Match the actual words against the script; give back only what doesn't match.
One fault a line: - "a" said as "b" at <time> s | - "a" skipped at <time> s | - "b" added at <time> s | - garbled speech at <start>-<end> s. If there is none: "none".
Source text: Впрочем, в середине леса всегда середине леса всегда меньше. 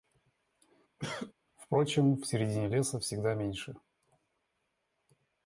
- "середине леса всегда" skipped at 3.3 s